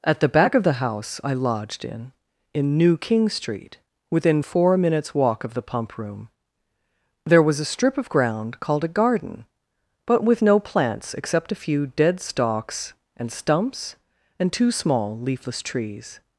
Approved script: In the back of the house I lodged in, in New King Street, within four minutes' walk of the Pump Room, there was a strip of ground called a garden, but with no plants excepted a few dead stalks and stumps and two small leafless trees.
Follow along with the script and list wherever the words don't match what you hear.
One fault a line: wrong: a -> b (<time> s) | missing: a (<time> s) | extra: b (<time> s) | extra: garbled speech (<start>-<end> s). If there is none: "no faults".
wrong: In -> At (0.0 s)
wrong: excepted -> except (11.1 s)